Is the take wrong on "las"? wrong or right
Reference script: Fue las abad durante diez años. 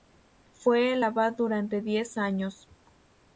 wrong